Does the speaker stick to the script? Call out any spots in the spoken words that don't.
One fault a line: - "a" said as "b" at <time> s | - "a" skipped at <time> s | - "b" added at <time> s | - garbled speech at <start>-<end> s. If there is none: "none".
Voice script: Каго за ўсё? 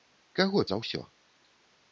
none